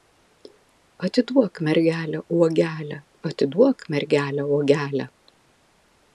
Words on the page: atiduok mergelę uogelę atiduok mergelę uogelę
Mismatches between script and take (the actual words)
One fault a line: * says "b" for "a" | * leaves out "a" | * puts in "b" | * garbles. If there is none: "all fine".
all fine